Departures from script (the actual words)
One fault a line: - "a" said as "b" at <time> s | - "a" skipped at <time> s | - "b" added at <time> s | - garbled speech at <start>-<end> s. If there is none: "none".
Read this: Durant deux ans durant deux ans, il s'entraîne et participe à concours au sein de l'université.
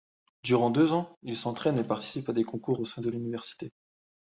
- "durant deux ans" skipped at 1.1 s
- "des" added at 2.3 s